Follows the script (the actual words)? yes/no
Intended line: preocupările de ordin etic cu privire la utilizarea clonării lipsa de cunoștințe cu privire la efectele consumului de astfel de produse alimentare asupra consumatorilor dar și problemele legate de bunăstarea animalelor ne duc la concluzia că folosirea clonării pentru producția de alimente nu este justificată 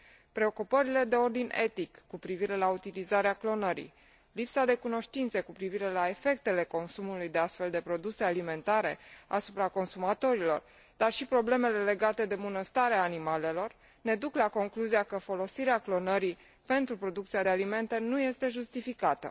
yes